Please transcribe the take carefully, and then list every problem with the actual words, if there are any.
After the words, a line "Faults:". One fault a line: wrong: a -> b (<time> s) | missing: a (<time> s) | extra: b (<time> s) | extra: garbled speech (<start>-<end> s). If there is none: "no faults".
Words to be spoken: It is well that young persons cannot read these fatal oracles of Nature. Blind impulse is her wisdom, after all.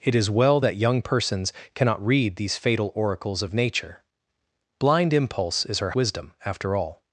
It is well that young persons cannot read these fatal oracles of Nature. Blind impulse is her wisdom, after all.
Faults:
no faults